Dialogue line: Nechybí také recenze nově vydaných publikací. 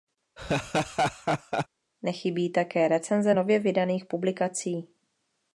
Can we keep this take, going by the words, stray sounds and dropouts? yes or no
no